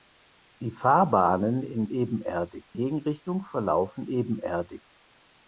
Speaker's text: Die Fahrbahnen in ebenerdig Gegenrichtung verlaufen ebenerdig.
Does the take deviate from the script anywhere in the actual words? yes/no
no